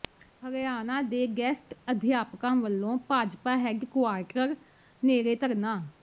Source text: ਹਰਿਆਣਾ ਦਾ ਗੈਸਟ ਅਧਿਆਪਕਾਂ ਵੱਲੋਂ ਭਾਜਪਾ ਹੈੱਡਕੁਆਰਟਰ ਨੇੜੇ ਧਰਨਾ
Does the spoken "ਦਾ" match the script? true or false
false